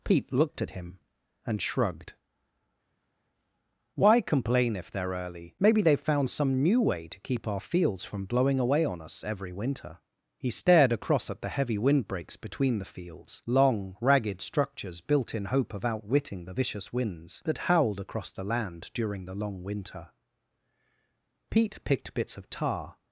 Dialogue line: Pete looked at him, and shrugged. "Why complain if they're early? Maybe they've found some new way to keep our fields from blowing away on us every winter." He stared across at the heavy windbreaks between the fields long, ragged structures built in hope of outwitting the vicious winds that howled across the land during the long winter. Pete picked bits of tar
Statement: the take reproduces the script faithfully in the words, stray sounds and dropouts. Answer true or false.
true